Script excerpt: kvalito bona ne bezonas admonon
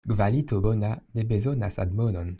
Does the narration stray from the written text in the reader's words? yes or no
no